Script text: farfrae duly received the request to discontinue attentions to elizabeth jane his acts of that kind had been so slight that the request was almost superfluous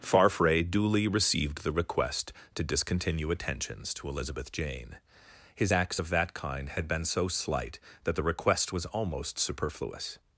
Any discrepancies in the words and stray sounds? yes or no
no